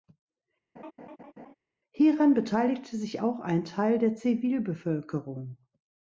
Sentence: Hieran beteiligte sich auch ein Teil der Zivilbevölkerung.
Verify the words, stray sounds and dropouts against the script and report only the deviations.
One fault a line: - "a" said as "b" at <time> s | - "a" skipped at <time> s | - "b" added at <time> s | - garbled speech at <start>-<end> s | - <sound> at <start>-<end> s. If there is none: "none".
- laugh at 0.8-1.5 s